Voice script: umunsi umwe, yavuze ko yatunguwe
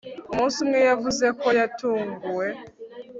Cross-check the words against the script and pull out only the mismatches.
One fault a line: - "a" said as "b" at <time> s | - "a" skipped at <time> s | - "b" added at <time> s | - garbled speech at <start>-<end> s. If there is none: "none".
none